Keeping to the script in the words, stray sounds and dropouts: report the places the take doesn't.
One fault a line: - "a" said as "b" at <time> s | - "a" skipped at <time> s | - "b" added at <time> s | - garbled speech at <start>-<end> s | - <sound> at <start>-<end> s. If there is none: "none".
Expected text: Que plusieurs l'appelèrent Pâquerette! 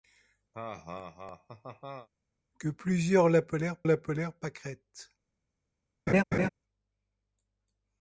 - laugh at 0.5-2.1 s
- "l'appelèrent" added at 3.8 s
- laugh at 6.1-6.5 s